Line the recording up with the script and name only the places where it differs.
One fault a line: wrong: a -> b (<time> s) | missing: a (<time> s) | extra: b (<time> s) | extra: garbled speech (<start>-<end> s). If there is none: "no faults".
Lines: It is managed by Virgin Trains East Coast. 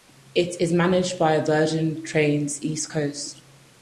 no faults